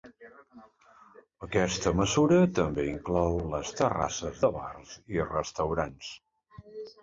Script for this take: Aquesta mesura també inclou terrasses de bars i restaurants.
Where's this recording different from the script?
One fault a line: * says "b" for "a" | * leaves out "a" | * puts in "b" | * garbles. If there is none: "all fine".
* puts in "les"